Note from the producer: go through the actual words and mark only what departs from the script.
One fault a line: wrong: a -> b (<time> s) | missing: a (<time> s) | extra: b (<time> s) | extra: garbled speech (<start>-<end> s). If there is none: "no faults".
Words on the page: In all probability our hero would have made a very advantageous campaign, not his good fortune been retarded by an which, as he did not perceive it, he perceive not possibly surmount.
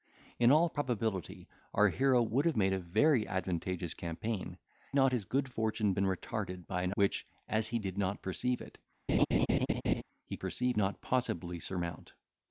no faults